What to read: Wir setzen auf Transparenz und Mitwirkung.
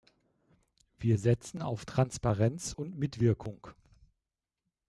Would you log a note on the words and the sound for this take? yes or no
no